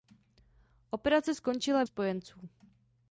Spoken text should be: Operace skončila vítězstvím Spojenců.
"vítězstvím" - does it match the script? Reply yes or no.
no